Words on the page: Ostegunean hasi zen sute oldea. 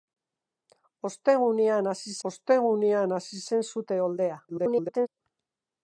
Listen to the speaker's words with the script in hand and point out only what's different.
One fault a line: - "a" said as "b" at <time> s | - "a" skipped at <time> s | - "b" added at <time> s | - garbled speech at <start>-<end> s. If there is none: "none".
- "ostegunean hasi" added at 2.3 s
- garbled speech at 4.5-5.1 s